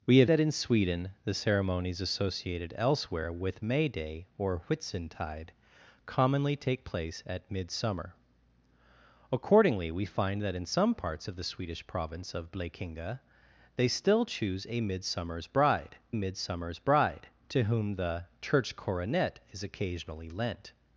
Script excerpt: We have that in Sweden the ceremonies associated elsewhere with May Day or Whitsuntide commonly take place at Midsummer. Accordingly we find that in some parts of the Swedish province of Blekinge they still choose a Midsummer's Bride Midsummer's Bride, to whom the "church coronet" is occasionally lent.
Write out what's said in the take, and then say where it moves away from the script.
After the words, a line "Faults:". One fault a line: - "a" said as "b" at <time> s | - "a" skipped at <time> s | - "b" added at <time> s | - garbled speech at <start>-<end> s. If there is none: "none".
We have that in Sweden the ceremonies associated elsewhere with May Day or Whitsuntide commonly take place at Midsummer. Accordingly we find that in some parts of the Swedish province of Blekinge they still choose a Midsummer's Bride Midsummer's Bride, to whom the "church coronet" is occasionally lent.
Faults:
none